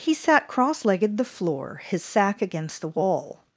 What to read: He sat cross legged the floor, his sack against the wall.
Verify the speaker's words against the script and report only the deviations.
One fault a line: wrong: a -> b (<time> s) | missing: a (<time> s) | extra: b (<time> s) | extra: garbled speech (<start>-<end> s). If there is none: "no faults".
no faults